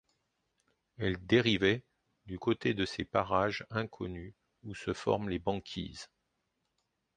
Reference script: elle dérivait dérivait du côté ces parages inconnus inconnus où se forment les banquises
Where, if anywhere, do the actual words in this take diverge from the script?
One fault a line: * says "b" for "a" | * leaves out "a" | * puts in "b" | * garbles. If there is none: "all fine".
* leaves out "dérivait"
* puts in "de"
* leaves out "inconnus"